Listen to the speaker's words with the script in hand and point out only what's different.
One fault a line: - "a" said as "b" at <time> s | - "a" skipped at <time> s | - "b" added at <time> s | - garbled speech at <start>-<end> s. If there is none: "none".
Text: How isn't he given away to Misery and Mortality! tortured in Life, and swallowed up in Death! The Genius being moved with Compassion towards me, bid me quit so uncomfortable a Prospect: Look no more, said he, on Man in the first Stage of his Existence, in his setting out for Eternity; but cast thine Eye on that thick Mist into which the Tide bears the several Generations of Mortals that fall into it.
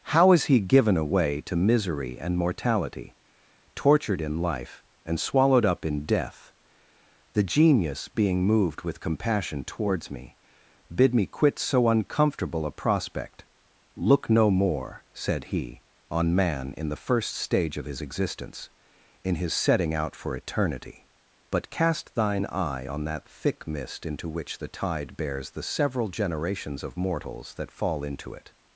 - "isn't" said as "is" at 0.3 s